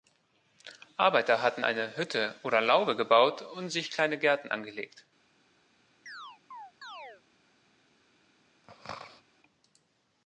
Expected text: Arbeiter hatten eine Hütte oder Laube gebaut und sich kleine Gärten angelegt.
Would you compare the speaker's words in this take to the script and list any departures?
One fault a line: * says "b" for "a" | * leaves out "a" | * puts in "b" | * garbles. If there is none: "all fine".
all fine